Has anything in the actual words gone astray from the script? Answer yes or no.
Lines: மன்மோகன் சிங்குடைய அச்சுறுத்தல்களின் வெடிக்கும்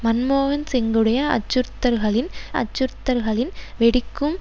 yes